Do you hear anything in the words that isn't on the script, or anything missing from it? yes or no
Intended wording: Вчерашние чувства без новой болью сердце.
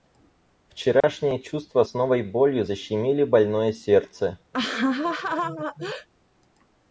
yes